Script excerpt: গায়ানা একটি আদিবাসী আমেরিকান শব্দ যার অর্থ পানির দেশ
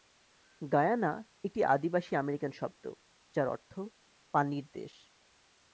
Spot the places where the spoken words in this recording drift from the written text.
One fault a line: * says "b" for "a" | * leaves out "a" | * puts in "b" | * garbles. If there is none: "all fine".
all fine